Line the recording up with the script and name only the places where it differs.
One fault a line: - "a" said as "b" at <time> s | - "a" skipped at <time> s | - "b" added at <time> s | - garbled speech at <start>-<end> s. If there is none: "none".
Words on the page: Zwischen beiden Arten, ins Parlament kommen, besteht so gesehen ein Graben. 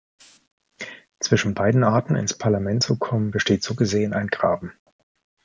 - "zu" added at 2.8 s